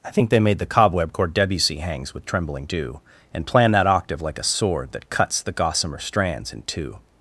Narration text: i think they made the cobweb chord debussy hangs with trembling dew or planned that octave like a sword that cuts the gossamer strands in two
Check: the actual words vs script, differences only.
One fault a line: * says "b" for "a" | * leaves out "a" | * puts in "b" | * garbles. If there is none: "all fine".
* says "and" for "or"